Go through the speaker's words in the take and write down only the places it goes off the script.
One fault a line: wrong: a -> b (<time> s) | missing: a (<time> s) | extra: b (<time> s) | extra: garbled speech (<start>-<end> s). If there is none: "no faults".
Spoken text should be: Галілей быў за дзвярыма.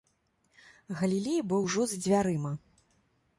extra: ужо (1.7 s)